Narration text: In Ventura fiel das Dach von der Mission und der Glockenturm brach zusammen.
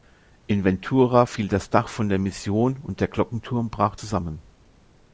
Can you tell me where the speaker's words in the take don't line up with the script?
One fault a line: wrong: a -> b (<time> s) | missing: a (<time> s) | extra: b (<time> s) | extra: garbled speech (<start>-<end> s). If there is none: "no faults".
no faults